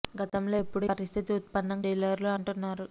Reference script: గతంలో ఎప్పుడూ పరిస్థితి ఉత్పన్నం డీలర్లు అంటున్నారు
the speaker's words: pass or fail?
pass